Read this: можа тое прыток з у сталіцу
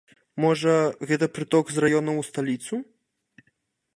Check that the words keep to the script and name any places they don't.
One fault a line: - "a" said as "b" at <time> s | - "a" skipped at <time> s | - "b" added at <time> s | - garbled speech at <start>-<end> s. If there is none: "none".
- "тое" said as "гэта" at 1.1 s
- "раёнаў" added at 1.8 s